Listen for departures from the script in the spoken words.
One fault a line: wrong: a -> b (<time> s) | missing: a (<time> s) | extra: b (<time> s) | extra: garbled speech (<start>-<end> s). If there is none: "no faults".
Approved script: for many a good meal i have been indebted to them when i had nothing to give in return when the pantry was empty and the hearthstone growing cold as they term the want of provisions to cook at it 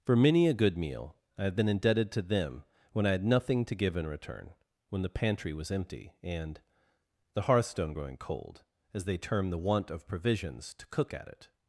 no faults